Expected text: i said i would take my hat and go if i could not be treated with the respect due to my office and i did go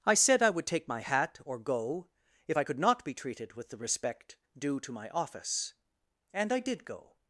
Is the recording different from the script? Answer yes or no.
yes